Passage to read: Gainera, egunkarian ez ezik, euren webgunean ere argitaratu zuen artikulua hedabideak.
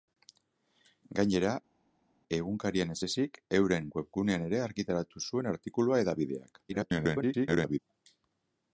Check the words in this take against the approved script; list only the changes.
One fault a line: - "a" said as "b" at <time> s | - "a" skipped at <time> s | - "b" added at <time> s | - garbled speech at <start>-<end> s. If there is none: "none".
- garbled speech at 6.7-7.8 s